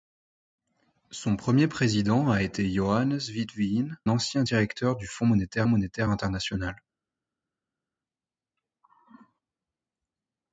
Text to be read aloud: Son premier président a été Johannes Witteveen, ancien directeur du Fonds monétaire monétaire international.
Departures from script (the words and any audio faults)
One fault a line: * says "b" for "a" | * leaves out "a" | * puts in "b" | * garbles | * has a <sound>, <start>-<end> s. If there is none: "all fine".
all fine